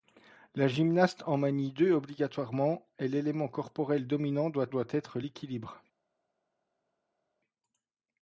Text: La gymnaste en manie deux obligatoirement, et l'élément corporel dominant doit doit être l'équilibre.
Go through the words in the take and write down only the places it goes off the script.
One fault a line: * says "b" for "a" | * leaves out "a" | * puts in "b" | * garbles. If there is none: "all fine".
all fine